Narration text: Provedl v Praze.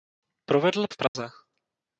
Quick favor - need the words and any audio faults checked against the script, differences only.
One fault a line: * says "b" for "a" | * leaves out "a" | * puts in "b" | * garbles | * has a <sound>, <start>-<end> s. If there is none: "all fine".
* has a dropout, 1.1-1.2 s